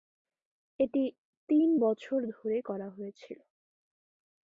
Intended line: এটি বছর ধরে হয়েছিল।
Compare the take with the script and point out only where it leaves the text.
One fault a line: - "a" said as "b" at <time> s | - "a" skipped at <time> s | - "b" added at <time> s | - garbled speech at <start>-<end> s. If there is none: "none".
- "তিন" added at 1.5 s
- "করা" added at 2.6 s